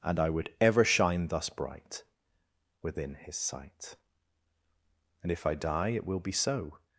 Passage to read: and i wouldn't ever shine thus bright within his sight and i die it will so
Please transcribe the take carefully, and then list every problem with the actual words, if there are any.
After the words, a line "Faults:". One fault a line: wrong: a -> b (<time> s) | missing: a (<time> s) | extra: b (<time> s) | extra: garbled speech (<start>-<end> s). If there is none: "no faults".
and i would ever shine thus bright within his sight and if i die it will be so
Faults:
wrong: wouldn't -> would (0.3 s)
extra: if (5.3 s)
extra: be (6.2 s)